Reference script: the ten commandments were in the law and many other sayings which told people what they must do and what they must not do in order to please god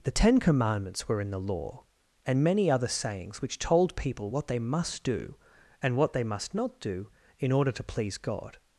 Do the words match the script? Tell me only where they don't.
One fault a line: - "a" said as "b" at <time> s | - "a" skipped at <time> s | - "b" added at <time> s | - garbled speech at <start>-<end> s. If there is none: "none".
none